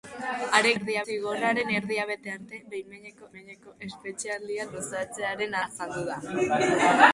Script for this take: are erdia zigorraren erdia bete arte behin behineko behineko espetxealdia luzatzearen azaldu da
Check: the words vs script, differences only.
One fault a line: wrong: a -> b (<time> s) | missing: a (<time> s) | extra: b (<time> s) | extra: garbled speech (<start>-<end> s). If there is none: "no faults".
no faults